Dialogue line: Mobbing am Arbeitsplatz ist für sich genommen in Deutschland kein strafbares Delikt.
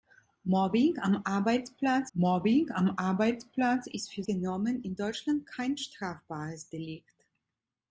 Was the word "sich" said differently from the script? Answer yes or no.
yes